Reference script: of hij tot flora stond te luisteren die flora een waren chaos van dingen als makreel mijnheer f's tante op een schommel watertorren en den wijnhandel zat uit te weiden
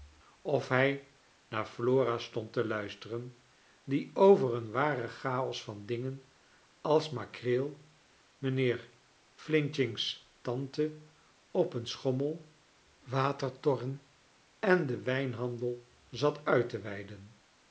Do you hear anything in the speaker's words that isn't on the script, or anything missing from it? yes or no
yes